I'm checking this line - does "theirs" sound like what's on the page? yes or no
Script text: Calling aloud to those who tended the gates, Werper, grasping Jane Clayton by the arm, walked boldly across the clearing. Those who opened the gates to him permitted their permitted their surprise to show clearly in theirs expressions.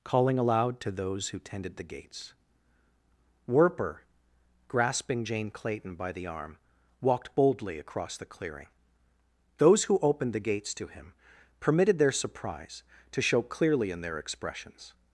no